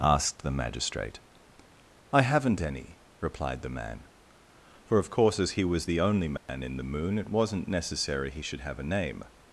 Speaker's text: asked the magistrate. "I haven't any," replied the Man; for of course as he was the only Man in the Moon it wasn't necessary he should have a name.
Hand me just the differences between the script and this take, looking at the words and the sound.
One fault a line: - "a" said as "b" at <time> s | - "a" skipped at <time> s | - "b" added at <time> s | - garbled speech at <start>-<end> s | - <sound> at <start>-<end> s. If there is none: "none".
- dropout at 6.4-6.5 s